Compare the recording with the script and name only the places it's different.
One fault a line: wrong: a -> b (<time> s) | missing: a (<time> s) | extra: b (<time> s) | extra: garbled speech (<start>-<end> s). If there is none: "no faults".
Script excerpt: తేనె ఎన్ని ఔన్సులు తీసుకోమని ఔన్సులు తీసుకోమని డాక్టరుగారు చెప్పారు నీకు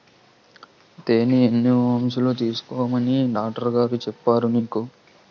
missing: ఔన్సులు తీసుకోమని (3.2 s)